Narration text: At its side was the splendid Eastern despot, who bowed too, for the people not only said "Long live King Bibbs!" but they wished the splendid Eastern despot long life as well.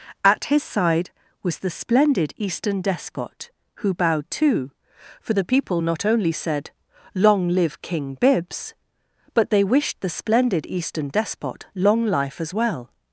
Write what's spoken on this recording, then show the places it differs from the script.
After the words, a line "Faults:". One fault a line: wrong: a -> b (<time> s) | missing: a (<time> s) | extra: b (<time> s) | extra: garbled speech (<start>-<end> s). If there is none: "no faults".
At his side was the splendid Eastern despot, who bowed too, for the people not only said "Long live King Bibbs!" but they wished the splendid Eastern despot long life as well.
Faults:
wrong: its -> his (0.5 s)